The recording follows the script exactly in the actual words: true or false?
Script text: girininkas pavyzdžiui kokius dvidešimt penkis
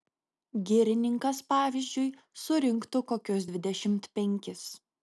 false